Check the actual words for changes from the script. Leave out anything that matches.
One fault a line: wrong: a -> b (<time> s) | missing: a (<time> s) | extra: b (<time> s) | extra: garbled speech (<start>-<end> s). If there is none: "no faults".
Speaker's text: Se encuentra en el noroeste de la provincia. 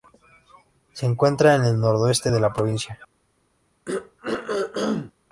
no faults